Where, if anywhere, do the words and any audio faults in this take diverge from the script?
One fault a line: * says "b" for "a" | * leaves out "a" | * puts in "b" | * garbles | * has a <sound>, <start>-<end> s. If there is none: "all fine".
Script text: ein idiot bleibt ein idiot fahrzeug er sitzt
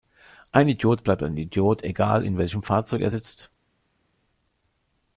* puts in "egal in welchem"